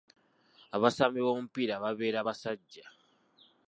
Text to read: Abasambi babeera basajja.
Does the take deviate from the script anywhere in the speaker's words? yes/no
yes